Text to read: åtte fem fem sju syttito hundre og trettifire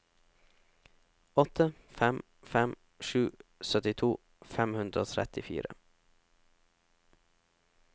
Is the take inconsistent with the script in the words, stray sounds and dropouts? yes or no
yes